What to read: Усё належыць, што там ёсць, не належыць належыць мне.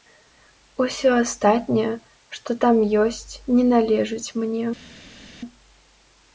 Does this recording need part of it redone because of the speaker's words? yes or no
yes